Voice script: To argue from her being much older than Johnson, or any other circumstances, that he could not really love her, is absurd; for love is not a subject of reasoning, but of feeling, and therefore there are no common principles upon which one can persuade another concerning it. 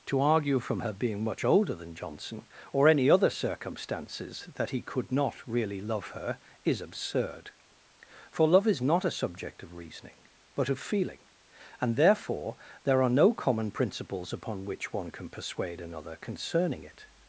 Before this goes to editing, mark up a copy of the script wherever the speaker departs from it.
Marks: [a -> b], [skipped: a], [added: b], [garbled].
To argue from her being much older than Johnson, or any other circumstances, that he could not really love her, is absurd; for love is not a subject of reasoning, but of feeling, and therefore there are no common principles upon which one can persuade another concerning it.